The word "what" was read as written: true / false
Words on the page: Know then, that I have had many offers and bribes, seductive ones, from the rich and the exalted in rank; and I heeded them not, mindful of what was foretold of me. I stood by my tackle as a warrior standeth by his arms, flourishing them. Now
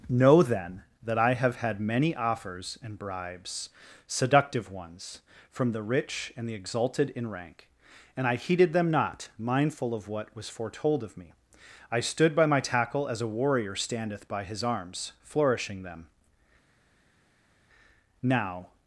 true